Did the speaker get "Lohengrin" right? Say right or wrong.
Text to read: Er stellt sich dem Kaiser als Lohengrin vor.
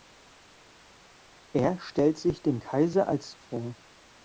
wrong